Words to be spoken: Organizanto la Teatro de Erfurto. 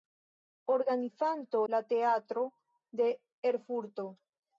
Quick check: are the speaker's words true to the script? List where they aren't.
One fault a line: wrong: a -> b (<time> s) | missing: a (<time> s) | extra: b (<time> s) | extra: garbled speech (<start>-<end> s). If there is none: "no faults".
no faults